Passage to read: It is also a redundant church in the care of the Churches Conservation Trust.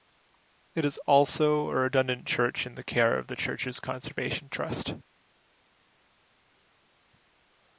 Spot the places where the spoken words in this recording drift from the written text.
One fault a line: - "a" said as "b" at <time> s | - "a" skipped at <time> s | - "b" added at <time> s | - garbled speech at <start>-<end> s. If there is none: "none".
none